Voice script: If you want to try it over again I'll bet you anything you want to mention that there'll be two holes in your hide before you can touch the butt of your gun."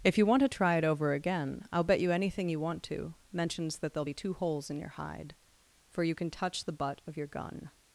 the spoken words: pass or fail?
fail